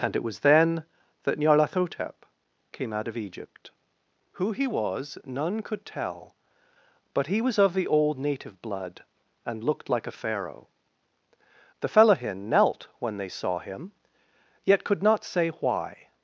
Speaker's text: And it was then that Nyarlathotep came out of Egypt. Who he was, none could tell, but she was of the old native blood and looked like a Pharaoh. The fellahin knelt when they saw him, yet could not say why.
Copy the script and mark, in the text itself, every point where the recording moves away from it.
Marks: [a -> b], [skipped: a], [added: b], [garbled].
And it was then that Nyarlathotep came out of Egypt. Who he was, none could tell, but [she -> he] was of the old native blood and looked like a Pharaoh. The fellahin knelt when they saw him, yet could not say why.